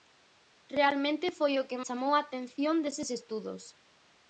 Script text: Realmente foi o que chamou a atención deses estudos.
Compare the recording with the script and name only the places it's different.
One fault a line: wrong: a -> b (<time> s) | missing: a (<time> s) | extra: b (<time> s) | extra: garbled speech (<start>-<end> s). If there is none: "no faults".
no faults